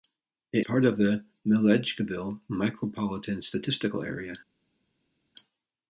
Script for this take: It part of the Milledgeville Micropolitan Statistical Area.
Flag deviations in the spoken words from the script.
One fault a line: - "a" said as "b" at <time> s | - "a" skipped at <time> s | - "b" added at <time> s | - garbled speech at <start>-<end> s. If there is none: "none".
none